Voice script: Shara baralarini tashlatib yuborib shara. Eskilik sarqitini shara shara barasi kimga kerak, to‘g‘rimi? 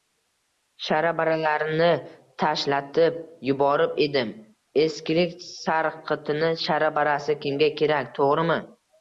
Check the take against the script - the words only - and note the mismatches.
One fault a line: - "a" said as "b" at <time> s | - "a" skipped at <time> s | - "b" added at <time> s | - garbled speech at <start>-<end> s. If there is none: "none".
- "shara" said as "edim" at 4.0 s
- "shara" skipped at 6.9 s